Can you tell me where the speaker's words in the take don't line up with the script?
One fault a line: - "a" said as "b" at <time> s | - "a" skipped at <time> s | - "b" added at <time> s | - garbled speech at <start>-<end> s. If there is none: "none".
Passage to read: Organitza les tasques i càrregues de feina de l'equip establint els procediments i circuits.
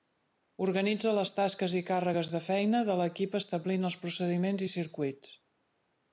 none